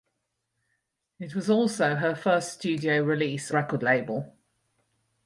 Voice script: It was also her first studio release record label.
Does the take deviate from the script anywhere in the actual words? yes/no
no